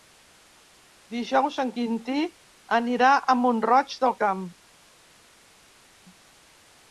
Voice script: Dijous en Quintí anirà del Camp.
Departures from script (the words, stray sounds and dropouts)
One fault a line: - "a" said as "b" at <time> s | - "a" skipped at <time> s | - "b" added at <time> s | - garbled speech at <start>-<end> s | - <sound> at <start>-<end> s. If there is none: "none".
- "a Mont roig" added at 3.1 s